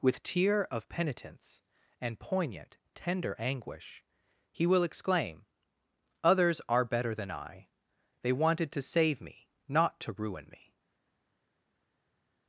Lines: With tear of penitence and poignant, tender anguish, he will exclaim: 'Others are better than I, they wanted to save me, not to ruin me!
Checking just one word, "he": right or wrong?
right